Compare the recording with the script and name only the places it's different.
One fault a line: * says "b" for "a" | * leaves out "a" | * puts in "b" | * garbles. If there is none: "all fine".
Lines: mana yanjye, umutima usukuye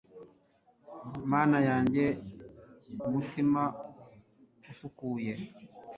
all fine